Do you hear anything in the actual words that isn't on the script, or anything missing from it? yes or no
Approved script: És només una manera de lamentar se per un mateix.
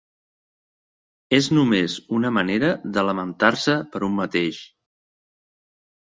no